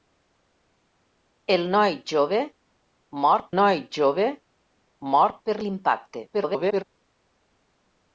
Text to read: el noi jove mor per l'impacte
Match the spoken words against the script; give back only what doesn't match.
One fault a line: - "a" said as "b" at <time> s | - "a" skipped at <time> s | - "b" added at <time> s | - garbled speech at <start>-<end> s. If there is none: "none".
- "noi jove mor" added at 3.6 s
- garbled speech at 6.3-6.8 s